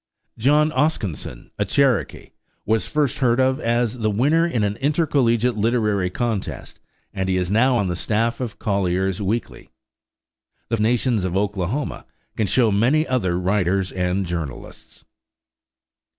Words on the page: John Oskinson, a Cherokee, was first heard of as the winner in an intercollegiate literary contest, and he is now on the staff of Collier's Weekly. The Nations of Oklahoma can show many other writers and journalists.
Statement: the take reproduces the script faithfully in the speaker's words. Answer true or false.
true